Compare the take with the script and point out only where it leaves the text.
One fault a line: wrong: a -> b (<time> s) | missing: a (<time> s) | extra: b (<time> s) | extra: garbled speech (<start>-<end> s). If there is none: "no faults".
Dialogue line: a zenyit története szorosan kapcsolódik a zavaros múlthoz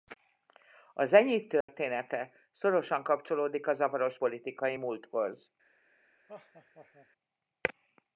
extra: politikai (4.2 s)